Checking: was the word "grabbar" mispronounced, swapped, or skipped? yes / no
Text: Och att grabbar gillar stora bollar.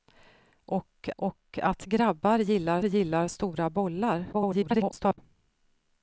no